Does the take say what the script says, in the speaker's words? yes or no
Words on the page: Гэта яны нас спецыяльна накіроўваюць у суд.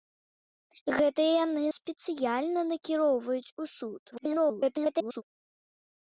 no